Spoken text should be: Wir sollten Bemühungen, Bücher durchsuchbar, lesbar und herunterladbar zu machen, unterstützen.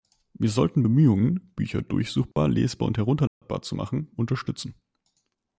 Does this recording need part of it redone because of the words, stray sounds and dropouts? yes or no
yes